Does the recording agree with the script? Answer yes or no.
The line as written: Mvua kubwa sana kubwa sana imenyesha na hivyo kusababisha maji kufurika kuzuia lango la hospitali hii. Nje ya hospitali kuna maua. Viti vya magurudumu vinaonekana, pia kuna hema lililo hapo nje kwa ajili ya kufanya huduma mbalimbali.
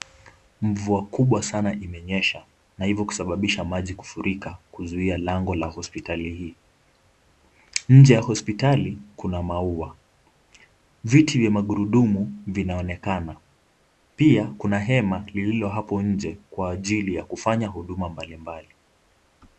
no